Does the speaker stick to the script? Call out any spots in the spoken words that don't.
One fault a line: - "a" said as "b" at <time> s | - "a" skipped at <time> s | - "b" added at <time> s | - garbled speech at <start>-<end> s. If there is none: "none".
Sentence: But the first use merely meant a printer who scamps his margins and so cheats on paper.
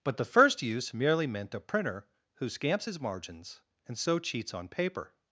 none